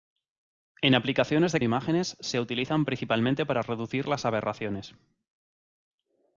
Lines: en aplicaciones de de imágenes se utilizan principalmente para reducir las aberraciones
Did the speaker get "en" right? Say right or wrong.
right